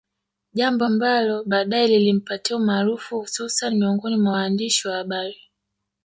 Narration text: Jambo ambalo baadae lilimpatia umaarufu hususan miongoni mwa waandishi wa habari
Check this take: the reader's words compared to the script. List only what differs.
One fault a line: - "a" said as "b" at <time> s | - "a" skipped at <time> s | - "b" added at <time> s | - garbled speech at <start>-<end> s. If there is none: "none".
none